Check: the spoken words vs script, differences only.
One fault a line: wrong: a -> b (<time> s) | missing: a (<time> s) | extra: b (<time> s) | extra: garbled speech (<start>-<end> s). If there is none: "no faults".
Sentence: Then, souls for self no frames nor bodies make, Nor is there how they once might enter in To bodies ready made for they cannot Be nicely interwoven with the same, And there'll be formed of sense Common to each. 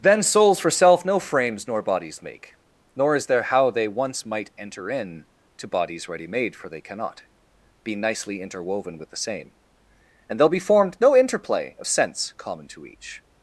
extra: no interplay (11.0 s)